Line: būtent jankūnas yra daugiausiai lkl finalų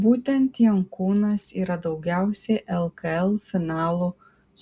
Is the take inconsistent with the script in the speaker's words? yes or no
no